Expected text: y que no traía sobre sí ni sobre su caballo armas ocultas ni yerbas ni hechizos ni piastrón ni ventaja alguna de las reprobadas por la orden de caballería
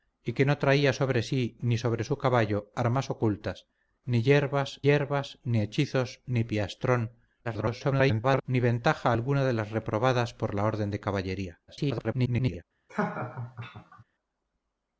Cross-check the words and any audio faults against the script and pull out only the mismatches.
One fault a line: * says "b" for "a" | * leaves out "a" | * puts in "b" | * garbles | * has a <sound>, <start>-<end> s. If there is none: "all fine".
* puts in "yerbas"
* garbles
* garbles
* has a laugh, 12.9-14.0 s